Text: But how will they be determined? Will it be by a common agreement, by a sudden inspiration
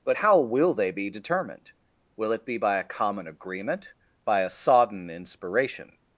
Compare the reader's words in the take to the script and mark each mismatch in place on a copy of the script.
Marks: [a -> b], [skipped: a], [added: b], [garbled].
But how will they be determined? Will it be by a common agreement, by a [sudden -> sodden] inspiration